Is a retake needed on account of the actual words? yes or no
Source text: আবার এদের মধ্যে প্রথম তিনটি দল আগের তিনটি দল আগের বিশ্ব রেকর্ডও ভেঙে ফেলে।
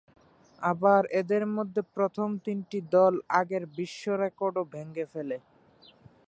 yes